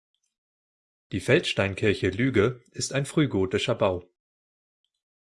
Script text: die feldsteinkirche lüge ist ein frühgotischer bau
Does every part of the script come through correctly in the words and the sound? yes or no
yes